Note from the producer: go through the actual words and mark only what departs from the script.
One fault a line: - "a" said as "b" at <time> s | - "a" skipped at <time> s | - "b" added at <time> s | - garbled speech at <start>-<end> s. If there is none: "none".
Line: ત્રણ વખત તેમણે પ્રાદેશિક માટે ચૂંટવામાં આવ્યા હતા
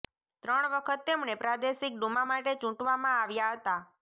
- "ડુમા" added at 2.0 s